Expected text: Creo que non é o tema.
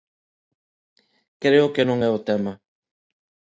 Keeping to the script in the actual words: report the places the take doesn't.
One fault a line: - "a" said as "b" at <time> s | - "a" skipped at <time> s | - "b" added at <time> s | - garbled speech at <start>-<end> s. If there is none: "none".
none